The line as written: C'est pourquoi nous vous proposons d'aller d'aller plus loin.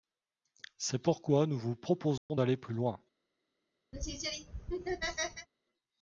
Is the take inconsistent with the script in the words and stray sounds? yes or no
yes